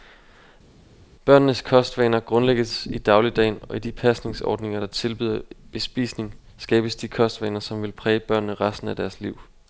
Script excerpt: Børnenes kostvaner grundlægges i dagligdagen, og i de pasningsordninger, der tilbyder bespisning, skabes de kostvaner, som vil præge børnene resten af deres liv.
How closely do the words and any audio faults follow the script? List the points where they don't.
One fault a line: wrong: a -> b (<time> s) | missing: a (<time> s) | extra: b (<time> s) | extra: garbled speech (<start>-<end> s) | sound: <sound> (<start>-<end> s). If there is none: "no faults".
no faults